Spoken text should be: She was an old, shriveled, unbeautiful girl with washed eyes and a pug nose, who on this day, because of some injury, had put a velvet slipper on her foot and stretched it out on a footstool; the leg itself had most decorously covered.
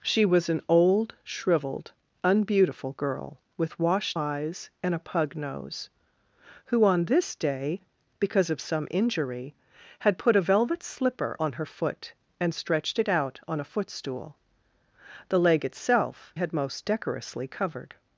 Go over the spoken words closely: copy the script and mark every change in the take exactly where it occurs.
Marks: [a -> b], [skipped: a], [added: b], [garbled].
She was an old, shriveled, unbeautiful girl with washed eyes and a pug nose, who on this day, because of some injury, had put a velvet slipper on her foot and stretched it out on a footstool; the leg itself had most decorously covered.